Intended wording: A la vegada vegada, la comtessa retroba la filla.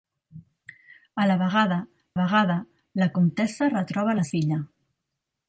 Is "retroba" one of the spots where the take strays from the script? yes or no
no